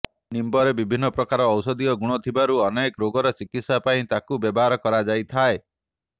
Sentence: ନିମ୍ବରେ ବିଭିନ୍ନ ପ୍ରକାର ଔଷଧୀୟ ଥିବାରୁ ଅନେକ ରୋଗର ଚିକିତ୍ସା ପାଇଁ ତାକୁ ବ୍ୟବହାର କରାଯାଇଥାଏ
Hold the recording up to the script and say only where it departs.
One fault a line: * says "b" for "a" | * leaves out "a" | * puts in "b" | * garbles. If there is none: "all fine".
* puts in "ଗୁଣ"